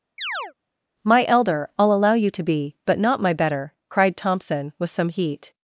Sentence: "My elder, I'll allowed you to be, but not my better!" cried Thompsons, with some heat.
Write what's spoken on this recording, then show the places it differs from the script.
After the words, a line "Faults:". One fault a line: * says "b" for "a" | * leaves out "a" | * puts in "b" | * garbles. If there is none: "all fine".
"My elder, I'll allow you to be, but not my better!" cried Thompson, with some heat.
Faults:
* says "allow" for "allowed"
* says "Thompson" for "Thompsons"